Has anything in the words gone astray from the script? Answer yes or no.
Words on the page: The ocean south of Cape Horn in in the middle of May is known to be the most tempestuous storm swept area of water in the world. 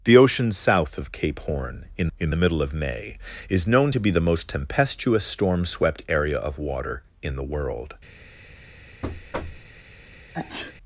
no